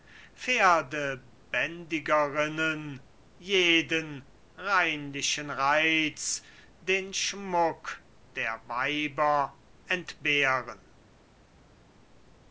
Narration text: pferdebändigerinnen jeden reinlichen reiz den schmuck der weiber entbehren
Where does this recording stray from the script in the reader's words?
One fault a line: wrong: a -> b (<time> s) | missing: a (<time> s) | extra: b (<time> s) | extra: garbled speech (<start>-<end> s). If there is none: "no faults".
no faults